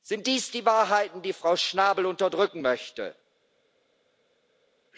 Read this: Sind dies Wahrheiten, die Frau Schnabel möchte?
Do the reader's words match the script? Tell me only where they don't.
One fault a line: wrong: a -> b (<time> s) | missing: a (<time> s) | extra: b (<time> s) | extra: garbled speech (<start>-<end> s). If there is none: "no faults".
extra: die (0.5 s)
extra: unterdrücken (2.0 s)